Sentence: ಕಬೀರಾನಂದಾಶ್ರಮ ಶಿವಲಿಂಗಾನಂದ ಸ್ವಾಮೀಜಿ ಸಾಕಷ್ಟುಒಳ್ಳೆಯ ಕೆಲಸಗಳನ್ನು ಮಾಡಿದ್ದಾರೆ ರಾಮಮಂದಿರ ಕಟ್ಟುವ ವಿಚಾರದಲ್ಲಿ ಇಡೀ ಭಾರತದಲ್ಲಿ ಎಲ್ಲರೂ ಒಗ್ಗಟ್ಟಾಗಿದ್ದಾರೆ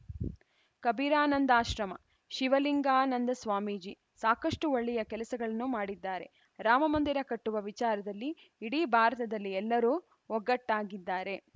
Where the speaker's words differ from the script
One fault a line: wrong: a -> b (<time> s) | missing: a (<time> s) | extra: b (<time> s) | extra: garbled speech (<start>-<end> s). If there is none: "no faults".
no faults